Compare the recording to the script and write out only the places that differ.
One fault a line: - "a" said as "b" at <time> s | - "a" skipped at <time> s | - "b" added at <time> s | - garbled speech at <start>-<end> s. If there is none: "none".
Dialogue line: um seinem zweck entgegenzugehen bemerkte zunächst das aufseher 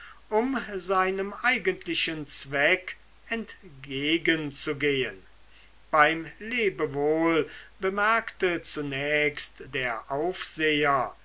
- "eigentlichen" added at 1.4 s
- "beim lebewohl" added at 5.9 s
- "das" said as "der" at 9.6 s